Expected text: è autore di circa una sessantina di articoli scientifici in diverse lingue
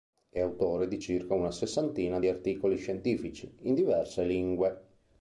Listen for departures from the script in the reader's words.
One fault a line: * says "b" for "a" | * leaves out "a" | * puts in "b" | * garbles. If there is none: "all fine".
all fine